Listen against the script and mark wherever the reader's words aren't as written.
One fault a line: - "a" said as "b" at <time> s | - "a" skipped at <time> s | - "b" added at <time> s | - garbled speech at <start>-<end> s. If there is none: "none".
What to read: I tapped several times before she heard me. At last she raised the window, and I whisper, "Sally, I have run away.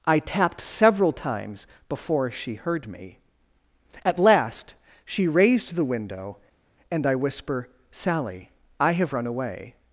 none